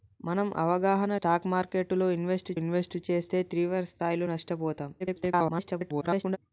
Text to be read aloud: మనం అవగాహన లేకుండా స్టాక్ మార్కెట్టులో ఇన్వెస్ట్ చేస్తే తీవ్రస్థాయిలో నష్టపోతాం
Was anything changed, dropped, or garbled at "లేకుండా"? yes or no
yes